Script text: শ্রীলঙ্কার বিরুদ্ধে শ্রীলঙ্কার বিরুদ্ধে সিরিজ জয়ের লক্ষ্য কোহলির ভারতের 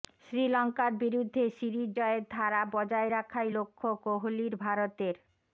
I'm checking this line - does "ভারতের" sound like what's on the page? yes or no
yes